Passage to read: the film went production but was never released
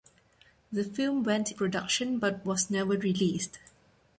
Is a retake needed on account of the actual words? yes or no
no